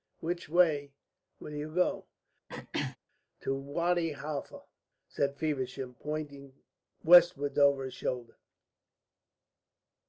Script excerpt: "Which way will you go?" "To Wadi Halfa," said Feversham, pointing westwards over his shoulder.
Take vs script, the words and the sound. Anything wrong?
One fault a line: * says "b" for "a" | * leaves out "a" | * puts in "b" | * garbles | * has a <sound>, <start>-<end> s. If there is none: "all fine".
* has a throat clearing, 2.5-3.0 s